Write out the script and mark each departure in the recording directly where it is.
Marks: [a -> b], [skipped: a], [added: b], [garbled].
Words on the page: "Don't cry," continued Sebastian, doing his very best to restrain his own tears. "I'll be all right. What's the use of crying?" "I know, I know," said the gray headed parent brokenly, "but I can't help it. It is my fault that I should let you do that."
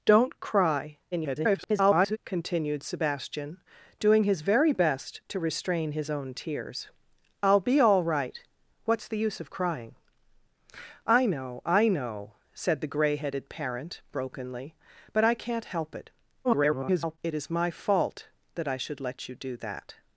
"Don't cry," [garbled] continued Sebastian, doing his very best to restrain his own tears. "I'll be all right. What's the use of crying?" "I know, I know," said the gray headed parent brokenly, "but I can't help it. [garbled] It is my fault that I should let you do that."